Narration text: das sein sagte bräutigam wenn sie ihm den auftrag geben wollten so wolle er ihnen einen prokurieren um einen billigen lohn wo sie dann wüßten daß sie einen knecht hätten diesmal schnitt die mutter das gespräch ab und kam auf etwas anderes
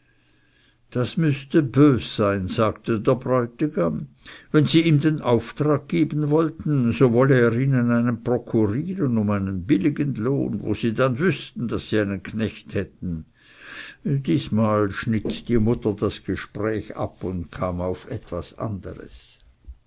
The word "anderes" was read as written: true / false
true